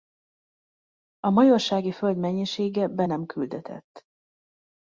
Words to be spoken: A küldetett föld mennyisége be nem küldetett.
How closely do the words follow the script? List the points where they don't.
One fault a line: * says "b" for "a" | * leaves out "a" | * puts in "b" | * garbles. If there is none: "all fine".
* says "majorsági" for "küldetett"